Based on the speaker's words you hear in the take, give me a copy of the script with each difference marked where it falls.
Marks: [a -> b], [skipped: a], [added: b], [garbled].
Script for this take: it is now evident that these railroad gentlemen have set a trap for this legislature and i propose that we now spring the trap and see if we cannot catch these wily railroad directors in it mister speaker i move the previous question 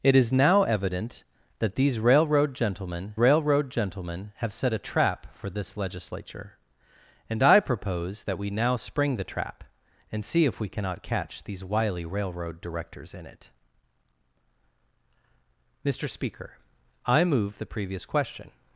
it is now evident that these railroad gentlemen [added: railroad gentlemen] have set a trap for this legislature and i propose that we now spring the trap and see if we cannot catch these wily railroad directors in it mister speaker i move the previous question